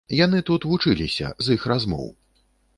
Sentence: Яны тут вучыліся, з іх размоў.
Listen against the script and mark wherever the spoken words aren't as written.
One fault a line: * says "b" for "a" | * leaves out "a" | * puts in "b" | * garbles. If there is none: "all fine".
all fine